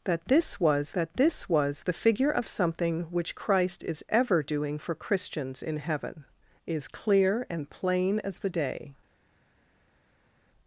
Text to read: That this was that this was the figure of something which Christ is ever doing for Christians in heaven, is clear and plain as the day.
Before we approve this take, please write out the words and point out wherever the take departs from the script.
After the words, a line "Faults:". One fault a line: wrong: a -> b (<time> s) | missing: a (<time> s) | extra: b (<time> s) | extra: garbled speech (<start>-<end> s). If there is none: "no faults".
That this was that this was the figure of something which Christ is ever doing for Christians in heaven, is clear and plain as the day.
Faults:
no faults